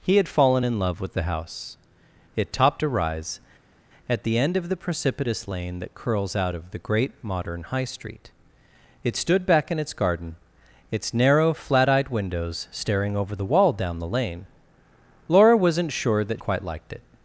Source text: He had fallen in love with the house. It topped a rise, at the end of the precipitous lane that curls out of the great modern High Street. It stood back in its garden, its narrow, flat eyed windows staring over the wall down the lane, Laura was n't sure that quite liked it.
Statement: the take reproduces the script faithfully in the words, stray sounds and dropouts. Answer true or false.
true